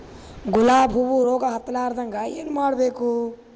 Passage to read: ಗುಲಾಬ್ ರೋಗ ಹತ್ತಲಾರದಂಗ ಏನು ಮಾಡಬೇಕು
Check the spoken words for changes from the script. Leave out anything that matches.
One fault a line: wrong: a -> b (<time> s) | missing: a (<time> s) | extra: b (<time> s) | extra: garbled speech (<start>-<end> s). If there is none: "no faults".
extra: ಹೂವು (0.9 s)